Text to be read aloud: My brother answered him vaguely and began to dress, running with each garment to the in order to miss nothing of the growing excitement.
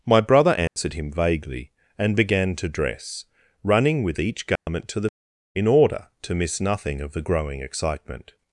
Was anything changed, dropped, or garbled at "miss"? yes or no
no